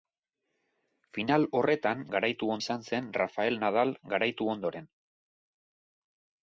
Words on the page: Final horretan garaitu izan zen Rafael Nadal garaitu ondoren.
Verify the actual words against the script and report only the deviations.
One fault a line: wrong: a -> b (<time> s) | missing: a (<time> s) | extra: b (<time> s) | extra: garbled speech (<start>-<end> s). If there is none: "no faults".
no faults